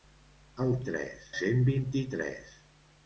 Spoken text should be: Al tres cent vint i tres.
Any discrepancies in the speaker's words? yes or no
no